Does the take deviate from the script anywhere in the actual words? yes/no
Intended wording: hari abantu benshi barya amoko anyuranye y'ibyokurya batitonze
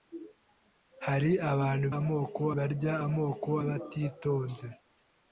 yes